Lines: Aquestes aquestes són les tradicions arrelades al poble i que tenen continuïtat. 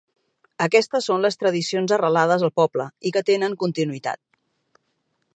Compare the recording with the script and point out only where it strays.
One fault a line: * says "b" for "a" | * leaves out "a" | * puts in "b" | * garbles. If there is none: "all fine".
* leaves out "aquestes"